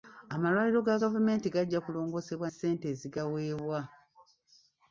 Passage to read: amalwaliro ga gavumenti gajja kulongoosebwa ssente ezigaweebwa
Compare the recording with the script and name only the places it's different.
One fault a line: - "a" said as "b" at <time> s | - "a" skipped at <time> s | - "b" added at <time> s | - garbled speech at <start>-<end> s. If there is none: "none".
none